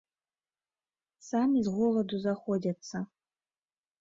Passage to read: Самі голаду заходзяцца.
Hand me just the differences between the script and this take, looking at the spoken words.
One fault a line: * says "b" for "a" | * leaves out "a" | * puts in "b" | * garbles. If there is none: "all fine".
* puts in "з"